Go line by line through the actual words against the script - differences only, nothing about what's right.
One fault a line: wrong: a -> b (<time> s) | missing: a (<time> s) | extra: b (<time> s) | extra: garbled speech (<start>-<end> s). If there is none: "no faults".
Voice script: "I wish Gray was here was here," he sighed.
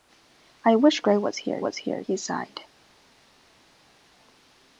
no faults